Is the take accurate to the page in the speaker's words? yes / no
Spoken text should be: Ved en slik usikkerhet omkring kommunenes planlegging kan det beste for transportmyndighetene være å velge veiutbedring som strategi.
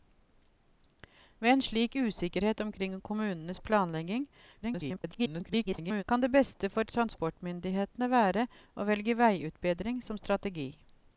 no